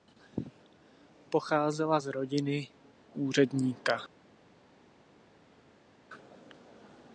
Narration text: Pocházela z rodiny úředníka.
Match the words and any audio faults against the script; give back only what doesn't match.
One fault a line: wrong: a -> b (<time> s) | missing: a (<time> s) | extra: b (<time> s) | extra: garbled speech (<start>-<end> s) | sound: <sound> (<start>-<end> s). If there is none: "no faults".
no faults